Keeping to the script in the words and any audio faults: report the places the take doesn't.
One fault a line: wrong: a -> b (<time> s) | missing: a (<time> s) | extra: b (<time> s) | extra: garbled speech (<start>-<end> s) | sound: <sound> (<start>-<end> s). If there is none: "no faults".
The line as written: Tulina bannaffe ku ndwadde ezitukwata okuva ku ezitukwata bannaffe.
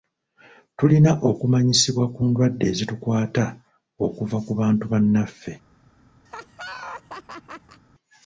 wrong: bannaffe -> okumanyisibwa (1.3 s)
wrong: ezitukwata -> bantu (4.6 s)
sound: laugh (6.3-7.8 s)